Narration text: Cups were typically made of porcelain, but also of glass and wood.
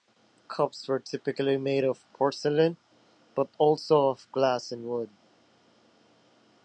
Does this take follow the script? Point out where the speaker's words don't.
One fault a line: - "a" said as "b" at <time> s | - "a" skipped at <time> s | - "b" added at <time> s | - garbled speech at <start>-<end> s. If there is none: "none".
none